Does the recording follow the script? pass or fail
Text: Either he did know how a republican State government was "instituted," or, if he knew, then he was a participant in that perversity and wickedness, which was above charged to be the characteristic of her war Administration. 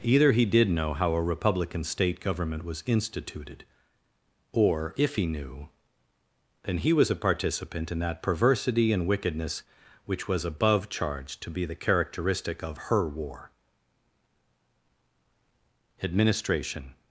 pass